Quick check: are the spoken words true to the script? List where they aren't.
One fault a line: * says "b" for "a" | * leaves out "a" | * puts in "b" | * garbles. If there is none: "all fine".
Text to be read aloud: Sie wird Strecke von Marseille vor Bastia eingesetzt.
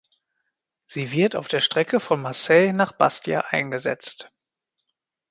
* puts in "auf der"
* says "nach" for "vor"